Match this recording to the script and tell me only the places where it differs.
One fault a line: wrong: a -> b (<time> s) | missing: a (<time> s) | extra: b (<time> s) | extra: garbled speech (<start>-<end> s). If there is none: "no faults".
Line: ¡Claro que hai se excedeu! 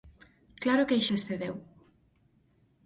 no faults